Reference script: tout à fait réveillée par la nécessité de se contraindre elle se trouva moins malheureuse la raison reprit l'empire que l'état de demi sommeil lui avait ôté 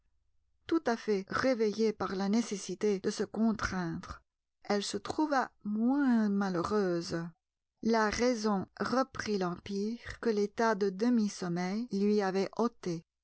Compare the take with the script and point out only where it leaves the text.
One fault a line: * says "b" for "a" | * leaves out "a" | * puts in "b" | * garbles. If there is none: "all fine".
all fine